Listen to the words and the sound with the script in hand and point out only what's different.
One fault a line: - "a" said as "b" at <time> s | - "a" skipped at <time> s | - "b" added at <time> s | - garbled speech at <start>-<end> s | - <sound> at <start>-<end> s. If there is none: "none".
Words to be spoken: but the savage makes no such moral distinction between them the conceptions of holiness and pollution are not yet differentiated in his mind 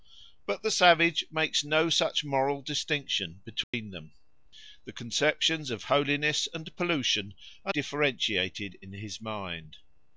- dropout at 3.6-3.7 s
- "not yet" skipped at 7.7 s